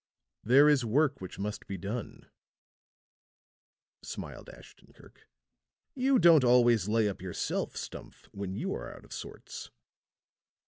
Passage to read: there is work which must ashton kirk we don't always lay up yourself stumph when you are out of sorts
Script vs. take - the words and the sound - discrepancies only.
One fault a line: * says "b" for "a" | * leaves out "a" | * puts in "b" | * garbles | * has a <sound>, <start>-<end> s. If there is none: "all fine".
* puts in "be done smiled"
* says "you" for "we"